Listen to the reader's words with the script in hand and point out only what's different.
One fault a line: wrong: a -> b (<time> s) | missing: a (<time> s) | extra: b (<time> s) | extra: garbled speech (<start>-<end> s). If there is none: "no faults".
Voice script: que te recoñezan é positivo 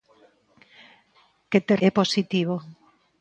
missing: recoñezan (1.8 s)